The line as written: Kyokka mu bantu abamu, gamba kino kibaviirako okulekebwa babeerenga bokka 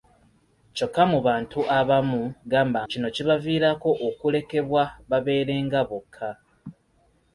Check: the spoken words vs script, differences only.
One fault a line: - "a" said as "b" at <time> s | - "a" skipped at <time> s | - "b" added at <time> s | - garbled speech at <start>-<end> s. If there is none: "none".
none